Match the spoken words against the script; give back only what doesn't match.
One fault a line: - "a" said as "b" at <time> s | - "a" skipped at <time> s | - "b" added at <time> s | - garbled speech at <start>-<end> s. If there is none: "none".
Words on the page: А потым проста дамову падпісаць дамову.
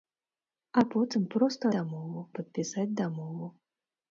none